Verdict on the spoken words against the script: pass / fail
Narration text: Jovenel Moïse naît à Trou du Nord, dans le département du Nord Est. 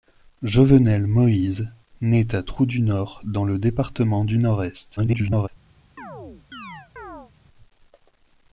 fail